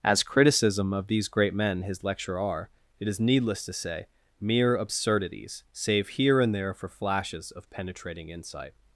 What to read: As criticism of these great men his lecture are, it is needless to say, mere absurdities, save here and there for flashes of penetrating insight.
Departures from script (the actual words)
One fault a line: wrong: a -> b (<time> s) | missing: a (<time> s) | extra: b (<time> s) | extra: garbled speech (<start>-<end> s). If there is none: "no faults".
no faults